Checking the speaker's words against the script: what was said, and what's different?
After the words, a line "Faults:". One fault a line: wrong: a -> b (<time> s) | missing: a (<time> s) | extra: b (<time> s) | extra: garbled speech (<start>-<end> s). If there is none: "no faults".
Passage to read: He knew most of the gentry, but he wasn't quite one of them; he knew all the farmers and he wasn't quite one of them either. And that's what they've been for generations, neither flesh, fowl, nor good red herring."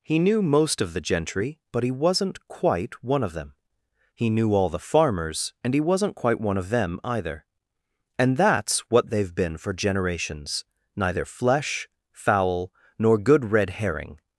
He knew most of the gentry, but he wasn't quite one of them; he knew all the farmers and he wasn't quite one of them either. And that's what they've been for generations, neither flesh, fowl, nor good red herring."
Faults:
no faults